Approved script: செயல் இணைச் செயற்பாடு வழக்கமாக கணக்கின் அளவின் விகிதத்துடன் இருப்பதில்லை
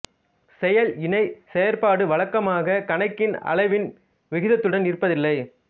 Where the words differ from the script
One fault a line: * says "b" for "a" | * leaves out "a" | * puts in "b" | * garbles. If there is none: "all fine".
all fine